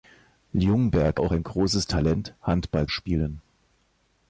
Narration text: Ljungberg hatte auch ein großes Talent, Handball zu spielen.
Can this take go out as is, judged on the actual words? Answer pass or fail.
fail